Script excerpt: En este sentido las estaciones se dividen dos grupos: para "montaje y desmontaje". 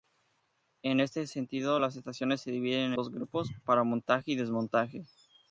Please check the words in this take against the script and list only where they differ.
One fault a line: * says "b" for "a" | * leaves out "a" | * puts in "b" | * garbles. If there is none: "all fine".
all fine